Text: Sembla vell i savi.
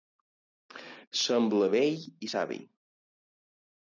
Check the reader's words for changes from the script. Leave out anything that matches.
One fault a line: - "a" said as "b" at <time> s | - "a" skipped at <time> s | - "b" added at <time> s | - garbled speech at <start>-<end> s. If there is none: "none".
none